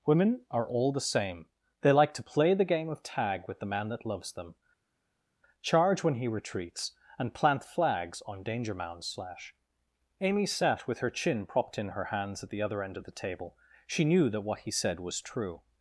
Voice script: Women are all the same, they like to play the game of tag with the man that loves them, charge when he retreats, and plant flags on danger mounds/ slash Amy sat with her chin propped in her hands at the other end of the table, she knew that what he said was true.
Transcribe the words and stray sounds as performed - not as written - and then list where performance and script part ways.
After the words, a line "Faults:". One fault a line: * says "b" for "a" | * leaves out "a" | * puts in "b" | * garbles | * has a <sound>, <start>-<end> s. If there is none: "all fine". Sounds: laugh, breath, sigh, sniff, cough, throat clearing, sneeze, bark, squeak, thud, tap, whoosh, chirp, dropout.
Women are all the same, they like to play the game of tag with the man that loves them, charge when he retreats, and plant flags on danger mounds/ slash Amy sat with her chin propped in her hands at the other end of the table, she knew that what he said was true.
Faults:
all fine